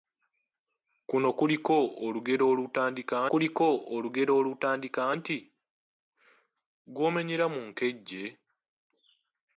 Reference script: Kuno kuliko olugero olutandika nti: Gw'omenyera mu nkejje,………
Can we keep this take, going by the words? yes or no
no